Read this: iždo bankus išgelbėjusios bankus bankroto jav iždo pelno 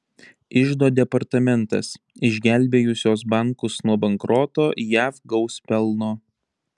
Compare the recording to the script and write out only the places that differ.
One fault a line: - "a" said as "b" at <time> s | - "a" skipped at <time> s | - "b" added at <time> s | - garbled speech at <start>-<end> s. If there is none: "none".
- "bankus" said as "departamentas" at 1.0 s
- "nuo" added at 3.9 s
- "iždo" said as "gaus" at 5.3 s